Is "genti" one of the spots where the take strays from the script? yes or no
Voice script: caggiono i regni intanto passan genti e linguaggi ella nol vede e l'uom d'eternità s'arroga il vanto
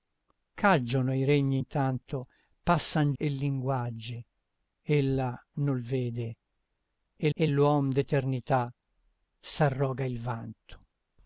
yes